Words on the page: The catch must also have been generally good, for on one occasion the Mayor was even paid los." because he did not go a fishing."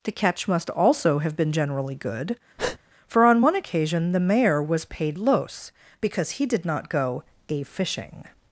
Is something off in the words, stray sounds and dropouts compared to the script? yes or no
yes